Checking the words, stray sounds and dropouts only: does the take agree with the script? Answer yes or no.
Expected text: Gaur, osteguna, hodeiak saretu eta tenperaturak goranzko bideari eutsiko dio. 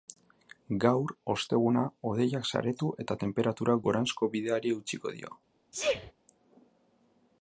no